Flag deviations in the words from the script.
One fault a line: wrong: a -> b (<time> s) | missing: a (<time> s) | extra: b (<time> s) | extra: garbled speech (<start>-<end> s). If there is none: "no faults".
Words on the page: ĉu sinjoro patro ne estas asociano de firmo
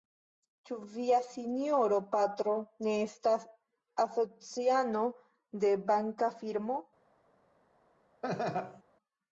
extra: via (0.9 s)
extra: banka (6.0 s)